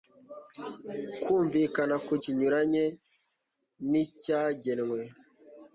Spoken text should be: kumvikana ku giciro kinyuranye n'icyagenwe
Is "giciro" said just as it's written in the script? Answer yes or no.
no